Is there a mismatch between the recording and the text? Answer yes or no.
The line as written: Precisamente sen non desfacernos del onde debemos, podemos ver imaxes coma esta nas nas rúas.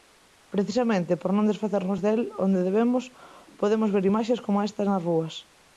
yes